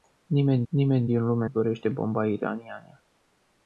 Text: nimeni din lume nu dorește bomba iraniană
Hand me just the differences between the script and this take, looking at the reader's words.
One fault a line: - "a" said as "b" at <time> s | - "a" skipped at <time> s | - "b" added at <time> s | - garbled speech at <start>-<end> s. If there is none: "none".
- "nimeni" added at 0.7 s
- "nu" skipped at 1.5 s